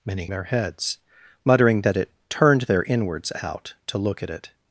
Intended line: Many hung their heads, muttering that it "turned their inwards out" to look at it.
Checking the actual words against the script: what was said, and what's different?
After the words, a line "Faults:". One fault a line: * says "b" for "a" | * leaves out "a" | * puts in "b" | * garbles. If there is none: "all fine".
Many their heads, muttering that it "turned their inwards out" to look at it.
Faults:
* leaves out "hung"